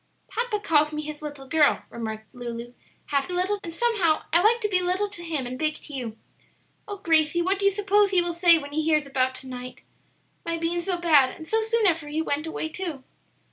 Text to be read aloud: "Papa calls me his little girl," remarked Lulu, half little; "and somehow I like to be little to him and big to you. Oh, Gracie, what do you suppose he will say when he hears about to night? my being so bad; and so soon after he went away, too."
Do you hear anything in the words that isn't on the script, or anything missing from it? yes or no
no